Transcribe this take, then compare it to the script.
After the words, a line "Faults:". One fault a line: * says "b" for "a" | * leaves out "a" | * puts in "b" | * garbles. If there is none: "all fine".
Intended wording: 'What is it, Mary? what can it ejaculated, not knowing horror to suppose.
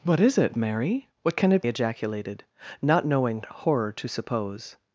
'What is it, Mary? what can it ejaculated, not knowing horror to suppose.
Faults:
all fine